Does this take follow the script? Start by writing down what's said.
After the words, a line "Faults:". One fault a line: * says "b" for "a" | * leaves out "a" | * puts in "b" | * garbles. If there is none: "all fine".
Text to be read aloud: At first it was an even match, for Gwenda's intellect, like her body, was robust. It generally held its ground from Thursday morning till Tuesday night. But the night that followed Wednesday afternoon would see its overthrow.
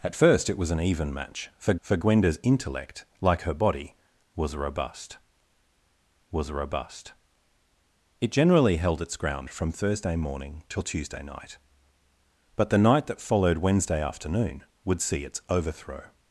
At first it was an even match, for for Gwenda's intellect, like her body, was robust was robust. It generally held its ground from Thursday morning till Tuesday night. But the night that followed Wednesday afternoon would see its overthrow.
Faults:
* puts in "for"
* puts in "was robust"